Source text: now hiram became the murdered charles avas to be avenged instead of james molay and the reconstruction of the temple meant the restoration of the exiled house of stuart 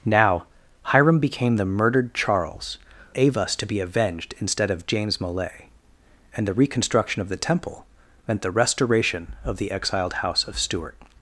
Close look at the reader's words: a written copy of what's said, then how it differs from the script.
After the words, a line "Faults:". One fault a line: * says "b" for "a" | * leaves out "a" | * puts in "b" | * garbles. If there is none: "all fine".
now hiram became the murdered charles avas to be avenged instead of james molay and the reconstruction of the temple meant the restoration of the exiled house of stuart
Faults:
all fine